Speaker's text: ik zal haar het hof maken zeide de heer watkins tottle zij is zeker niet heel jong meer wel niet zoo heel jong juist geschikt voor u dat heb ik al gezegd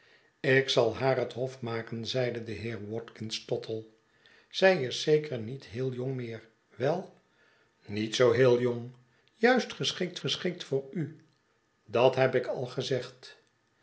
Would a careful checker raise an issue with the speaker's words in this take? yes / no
yes